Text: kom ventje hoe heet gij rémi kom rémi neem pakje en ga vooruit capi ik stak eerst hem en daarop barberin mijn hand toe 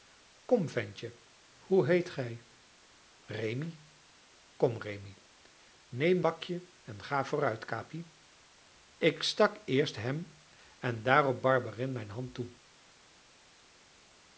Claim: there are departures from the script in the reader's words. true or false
false